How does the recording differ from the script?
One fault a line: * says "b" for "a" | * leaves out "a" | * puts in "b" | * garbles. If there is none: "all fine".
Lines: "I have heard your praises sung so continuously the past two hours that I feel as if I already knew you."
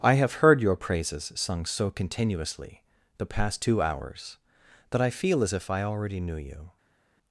all fine